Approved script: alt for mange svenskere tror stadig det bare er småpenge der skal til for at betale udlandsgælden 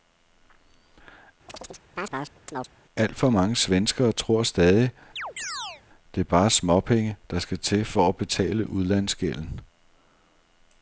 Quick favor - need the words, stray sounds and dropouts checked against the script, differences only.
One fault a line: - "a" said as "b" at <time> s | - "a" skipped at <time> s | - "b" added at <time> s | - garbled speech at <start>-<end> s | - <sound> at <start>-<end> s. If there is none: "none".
- chirp at 1.5-2.7 s
- chirp at 5.2-5.8 s